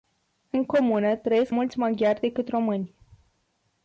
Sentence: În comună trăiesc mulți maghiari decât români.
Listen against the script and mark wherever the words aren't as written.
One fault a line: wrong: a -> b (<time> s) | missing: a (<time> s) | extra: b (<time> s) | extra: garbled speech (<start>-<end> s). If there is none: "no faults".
no faults